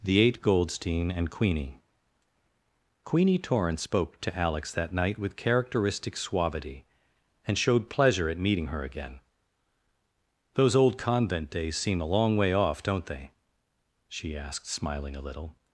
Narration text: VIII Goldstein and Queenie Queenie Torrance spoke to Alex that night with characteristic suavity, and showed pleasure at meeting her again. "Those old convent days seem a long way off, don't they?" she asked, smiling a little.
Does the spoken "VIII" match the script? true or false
false